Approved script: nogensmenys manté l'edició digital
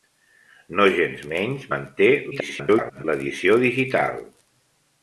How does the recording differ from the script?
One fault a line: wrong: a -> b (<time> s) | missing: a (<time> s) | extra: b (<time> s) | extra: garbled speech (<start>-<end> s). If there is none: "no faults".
extra: garbled speech (2.3-3.0 s)